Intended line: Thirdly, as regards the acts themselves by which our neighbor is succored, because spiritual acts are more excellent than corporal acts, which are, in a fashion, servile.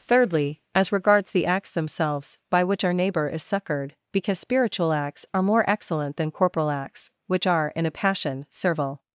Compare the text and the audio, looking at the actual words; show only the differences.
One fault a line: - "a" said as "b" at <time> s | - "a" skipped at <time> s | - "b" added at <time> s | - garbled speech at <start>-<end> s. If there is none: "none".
- "fashion" said as "passion" at 7.9 s